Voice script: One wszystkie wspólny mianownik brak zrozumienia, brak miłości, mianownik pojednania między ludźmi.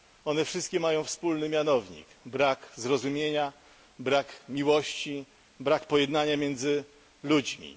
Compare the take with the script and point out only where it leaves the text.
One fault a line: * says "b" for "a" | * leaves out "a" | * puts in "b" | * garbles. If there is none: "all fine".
* puts in "mają"
* says "brak" for "mianownik"